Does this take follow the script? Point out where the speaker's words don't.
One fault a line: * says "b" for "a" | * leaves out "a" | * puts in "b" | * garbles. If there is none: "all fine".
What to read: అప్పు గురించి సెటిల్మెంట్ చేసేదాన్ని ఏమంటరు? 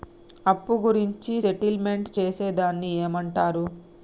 all fine